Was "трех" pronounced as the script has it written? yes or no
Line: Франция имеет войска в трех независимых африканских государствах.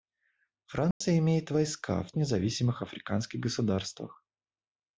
no